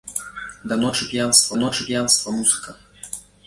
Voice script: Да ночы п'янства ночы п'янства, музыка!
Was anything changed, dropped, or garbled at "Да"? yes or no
no